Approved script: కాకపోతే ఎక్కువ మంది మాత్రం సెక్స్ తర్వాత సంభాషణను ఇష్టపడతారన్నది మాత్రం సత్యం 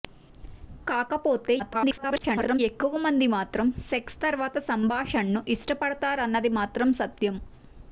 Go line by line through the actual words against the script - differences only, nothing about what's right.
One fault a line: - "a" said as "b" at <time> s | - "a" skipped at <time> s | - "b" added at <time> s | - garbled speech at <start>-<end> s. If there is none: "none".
- garbled speech at 1.6-2.6 s